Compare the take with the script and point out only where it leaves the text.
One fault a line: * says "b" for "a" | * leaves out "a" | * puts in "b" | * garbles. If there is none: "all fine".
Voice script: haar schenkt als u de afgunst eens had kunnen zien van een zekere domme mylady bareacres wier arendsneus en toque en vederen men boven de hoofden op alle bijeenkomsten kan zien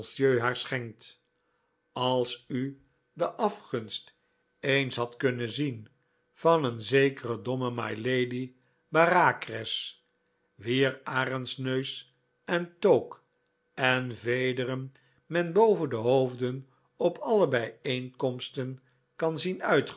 all fine